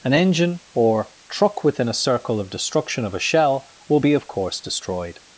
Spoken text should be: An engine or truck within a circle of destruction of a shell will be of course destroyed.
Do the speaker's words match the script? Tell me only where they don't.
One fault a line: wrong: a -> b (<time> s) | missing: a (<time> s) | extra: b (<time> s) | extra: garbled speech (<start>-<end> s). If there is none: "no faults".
no faults